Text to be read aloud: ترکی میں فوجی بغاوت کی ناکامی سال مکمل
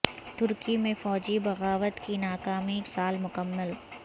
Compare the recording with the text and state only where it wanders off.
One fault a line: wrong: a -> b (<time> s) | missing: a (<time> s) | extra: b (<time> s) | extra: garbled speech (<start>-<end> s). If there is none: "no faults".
no faults